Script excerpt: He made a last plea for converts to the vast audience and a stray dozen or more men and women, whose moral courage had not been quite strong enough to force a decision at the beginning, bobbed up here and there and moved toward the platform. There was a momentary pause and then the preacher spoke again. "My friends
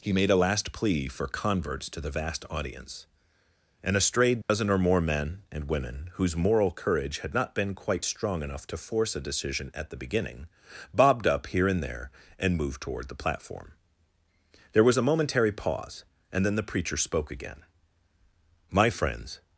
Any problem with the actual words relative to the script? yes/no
no